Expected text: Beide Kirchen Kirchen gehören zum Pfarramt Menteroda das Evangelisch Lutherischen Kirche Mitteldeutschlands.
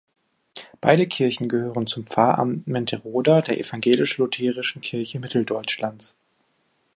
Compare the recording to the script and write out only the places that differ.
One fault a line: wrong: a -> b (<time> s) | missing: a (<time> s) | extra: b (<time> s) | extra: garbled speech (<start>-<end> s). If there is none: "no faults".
missing: Kirchen (1.5 s)
wrong: das -> der (3.4 s)